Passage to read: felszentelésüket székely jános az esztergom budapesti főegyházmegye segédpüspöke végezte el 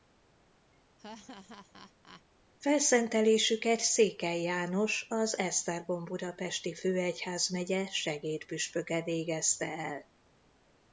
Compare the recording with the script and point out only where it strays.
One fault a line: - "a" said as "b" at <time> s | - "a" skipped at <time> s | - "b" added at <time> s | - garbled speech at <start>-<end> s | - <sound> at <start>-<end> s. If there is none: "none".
- laugh at 1.0-2.2 s